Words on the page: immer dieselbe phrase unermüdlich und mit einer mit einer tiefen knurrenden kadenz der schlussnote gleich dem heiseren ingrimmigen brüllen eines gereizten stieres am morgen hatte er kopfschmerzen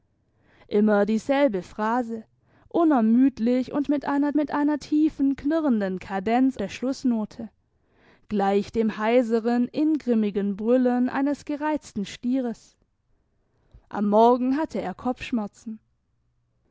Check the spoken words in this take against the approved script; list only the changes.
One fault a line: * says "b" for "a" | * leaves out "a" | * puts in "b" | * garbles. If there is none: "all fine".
all fine